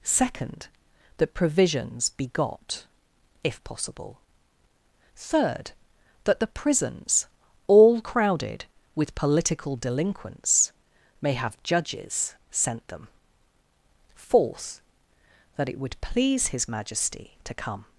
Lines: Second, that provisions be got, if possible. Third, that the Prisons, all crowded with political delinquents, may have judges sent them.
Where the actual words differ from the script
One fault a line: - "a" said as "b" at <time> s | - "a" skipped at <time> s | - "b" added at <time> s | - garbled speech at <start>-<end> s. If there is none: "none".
- "Fourth that it would please his Majesty to come" added at 14.1 s